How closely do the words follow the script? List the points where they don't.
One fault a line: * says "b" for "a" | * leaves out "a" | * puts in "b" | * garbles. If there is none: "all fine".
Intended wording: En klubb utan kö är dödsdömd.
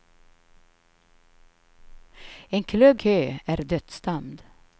* leaves out "utan"